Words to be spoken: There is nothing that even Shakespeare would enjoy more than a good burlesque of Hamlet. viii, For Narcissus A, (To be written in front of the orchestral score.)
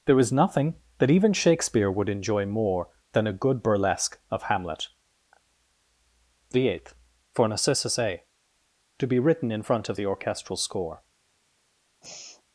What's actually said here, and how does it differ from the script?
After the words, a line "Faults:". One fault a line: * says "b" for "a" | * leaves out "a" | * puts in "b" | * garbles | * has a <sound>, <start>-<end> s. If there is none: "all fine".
There is nothing that even Shakespeare would enjoy more than a good burlesque of Hamlet. the eighth, For Narcissus A, (To be written in front of the orchestral score.)
Faults:
* says "the eighth" for "viii"
* has a sigh, 12.0-12.4 s